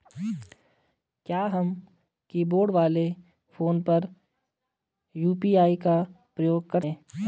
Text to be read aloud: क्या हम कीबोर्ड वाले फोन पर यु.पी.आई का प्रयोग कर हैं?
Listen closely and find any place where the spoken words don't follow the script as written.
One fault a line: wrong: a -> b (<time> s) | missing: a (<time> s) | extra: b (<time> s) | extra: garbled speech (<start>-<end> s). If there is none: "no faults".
no faults